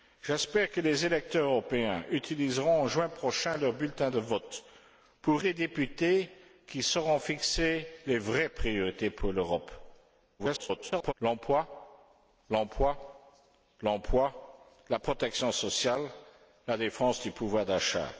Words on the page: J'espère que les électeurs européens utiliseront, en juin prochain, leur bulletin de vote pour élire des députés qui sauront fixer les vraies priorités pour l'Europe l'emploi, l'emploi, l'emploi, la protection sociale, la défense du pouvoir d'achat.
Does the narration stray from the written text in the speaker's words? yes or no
yes